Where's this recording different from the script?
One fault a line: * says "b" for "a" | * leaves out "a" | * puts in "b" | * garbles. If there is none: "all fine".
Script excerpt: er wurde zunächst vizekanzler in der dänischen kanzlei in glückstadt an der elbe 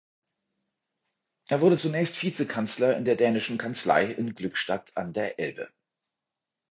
all fine